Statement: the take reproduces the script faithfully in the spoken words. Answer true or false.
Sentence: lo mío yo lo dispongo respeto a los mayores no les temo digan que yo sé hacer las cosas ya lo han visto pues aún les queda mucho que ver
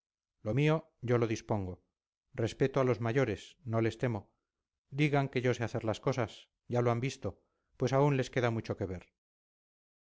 true